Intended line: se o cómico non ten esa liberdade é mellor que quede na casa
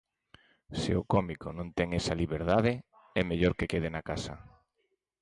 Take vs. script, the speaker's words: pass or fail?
pass